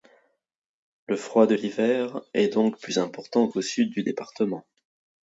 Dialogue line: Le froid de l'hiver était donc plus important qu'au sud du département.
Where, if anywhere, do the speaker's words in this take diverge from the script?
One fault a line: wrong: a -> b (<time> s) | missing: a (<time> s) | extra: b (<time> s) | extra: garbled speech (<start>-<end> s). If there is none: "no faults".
wrong: était -> est (2.3 s)